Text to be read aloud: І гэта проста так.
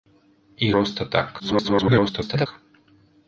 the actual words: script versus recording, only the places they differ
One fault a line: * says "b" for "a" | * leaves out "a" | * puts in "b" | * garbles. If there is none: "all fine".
* leaves out "гэта"
* garbles